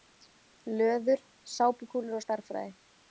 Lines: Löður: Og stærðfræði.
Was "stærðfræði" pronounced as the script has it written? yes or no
yes